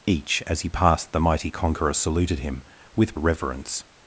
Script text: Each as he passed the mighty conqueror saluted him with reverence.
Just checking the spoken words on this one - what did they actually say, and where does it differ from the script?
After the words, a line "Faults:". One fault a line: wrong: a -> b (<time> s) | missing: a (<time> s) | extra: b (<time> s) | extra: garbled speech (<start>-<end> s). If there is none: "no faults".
Each as he passed the mighty conqueror saluted him with reverence.
Faults:
no faults